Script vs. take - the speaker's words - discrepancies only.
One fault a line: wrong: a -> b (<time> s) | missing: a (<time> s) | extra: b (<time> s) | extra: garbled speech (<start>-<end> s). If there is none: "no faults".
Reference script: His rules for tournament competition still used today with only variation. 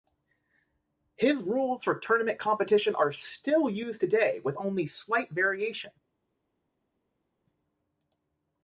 extra: are (3.0 s)
extra: slight (4.8 s)